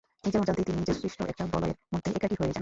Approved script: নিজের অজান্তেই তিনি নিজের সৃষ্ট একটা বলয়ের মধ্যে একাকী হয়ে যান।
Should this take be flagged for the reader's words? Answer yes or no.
no